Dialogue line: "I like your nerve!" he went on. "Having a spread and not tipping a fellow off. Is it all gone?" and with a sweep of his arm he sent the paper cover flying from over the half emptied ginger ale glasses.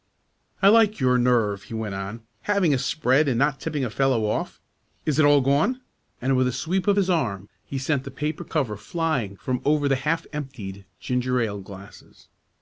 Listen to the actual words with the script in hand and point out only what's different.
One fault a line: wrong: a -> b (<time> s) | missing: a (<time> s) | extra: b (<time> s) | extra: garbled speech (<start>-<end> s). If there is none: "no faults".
no faults